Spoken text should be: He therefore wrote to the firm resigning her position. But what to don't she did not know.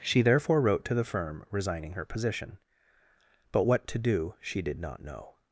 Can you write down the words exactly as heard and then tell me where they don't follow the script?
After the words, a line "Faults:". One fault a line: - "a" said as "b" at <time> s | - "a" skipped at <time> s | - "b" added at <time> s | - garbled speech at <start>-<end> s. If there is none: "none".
She therefore wrote to the firm resigning her position. But what to do she did not know.
Faults:
- "He" said as "She" at 0.0 s
- "don't" said as "do" at 4.0 s